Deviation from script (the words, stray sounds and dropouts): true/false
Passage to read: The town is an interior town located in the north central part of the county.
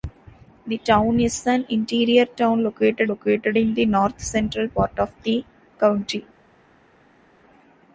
true